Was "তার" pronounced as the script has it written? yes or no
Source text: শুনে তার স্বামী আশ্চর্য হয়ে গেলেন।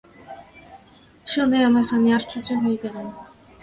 no